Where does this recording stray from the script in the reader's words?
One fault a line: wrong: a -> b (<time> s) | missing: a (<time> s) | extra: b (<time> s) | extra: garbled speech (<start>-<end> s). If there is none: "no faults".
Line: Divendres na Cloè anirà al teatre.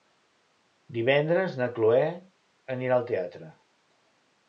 no faults